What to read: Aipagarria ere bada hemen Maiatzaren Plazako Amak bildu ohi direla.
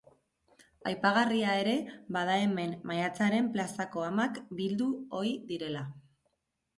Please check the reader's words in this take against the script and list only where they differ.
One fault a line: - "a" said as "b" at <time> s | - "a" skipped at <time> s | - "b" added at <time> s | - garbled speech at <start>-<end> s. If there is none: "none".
none